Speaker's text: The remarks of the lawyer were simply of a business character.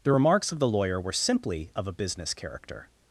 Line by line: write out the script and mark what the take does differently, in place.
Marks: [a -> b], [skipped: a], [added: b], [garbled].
The remarks of the lawyer were simply of a business character.